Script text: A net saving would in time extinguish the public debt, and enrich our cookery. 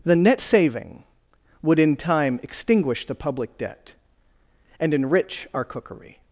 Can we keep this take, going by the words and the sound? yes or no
no